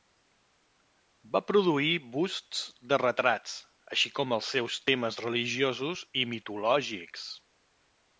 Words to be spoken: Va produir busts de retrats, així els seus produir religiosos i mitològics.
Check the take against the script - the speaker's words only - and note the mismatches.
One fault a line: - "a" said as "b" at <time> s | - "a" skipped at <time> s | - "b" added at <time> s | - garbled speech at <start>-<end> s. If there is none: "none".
- "com" added at 4.2 s
- "produir" said as "temes" at 4.9 s